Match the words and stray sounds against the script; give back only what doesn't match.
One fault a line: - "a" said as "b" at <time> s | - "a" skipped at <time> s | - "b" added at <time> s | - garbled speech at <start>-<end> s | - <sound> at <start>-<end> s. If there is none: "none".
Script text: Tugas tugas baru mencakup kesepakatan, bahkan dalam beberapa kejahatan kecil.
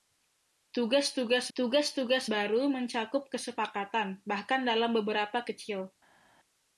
- "tugas tugas" added at 1.5 s
- "kejahatan" skipped at 5.4 s